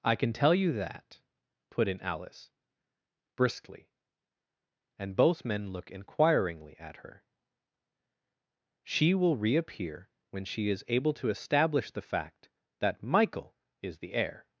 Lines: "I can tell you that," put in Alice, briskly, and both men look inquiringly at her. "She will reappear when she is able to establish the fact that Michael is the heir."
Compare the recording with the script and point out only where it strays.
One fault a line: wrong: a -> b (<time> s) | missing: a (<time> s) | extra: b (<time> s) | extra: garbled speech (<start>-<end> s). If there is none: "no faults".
no faults